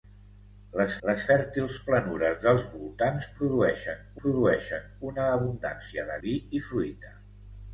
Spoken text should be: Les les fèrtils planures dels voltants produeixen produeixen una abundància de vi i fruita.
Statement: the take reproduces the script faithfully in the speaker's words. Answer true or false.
true